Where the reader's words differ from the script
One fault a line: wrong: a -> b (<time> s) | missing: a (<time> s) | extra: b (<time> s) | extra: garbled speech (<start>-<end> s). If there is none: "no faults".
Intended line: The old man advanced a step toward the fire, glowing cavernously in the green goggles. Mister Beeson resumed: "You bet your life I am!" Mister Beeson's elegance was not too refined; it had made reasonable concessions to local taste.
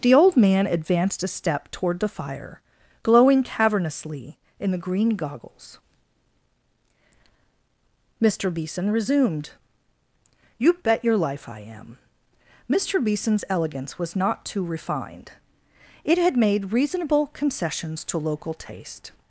no faults